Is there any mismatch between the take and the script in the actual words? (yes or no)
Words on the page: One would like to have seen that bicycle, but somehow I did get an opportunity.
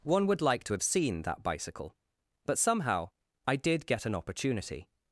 no